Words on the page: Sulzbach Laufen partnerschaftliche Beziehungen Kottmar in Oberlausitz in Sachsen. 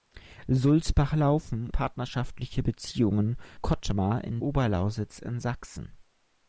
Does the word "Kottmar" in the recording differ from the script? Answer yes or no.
no